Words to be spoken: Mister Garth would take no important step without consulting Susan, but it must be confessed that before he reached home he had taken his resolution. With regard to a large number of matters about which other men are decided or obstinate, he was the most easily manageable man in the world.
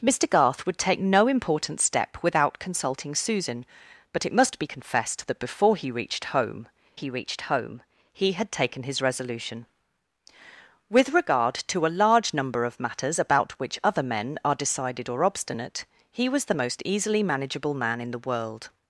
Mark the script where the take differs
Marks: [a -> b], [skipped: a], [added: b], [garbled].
Mister Garth would take no important step without consulting Susan, but it must be confessed that before he reached home he [added: reached home he] had taken his resolution. With regard to a large number of matters about which other men are decided or obstinate, he was the most easily manageable man in the world.